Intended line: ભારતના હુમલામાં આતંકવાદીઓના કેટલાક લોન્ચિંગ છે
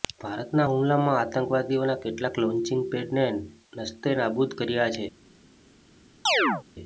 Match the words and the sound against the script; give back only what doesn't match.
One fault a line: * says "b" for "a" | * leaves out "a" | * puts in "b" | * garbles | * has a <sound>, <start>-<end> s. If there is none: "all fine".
* puts in "પેડને નસ્તેનાબૂદ કર્યા"
* has a chirp, 6.3-6.6 s